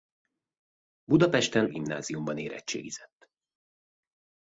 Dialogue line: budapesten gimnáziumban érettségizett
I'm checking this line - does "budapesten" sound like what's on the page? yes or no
yes